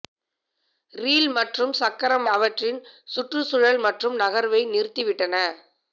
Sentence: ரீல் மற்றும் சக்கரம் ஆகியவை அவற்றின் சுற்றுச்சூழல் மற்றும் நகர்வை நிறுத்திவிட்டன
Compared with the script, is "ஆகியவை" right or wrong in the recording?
wrong